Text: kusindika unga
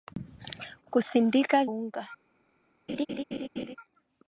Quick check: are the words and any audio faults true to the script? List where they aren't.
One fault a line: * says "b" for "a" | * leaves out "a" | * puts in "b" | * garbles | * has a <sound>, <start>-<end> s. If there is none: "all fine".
* has a laugh, 2.9-3.8 s